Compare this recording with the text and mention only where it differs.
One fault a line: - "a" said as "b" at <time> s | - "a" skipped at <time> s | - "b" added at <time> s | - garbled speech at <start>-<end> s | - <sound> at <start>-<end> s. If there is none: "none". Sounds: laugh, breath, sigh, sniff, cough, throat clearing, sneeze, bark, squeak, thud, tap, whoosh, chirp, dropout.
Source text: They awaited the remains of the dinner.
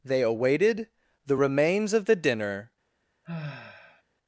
- sigh at 3.2-4.0 s